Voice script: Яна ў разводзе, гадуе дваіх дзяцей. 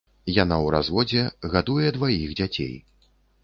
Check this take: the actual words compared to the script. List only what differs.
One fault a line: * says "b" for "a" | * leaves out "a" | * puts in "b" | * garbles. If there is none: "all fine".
all fine